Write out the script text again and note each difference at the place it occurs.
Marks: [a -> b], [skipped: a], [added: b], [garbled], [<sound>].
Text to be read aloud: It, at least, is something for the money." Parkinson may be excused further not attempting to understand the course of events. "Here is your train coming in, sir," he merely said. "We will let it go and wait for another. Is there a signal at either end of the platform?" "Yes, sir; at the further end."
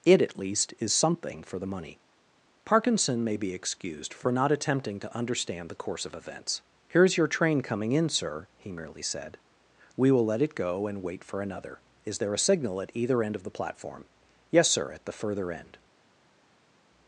It, at least, is something for the money." Parkinson may be excused [further -> for] not attempting to understand the course of events. "Here is your train coming in, sir," he merely said. "We will let it go and wait for another. Is there a signal at either end of the platform?" "Yes, sir; at the further end."